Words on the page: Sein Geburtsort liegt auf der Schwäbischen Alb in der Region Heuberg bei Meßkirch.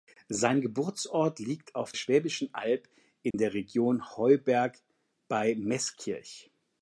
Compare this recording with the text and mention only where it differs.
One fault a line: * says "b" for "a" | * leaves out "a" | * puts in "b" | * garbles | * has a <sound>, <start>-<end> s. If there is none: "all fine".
* leaves out "der"
* has a dropout, 3.3-3.3 s